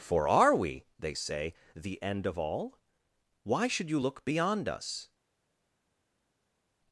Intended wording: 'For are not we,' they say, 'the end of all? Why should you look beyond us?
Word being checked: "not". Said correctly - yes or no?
no